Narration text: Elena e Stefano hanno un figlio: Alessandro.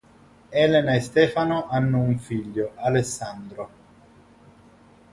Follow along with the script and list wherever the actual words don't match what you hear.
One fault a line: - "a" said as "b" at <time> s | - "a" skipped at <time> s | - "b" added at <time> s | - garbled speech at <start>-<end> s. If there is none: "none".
none